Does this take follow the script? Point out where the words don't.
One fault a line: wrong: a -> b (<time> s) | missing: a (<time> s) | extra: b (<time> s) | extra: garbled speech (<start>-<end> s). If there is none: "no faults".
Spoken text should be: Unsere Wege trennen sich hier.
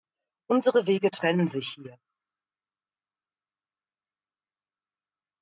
no faults